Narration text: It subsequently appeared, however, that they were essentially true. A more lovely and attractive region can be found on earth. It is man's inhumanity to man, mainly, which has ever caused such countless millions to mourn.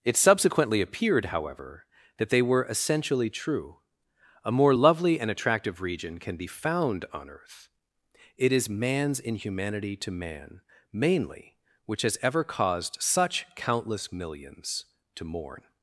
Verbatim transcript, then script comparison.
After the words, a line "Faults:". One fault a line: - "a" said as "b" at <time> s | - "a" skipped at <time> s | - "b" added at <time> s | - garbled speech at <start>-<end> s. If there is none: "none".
It subsequently appeared, however, that they were essentially true. A more lovely and attractive region can be found on earth. It is man's inhumanity to man, mainly, which has ever caused such countless millions to mourn.
Faults:
none